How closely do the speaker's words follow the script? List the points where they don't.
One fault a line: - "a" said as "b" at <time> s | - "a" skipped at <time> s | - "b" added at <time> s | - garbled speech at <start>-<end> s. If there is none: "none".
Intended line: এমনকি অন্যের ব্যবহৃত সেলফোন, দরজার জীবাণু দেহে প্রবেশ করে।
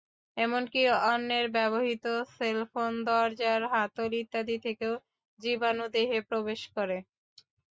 - "হাতল ইত্যাদি থেকেও" added at 3.7 s